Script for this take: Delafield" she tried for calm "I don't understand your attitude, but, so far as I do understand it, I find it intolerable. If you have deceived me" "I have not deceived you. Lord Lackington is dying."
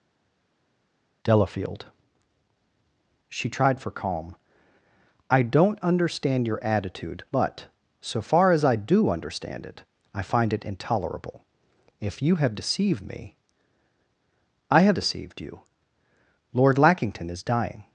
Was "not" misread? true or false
true